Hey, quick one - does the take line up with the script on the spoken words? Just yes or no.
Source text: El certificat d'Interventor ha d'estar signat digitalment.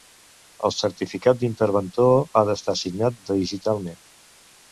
yes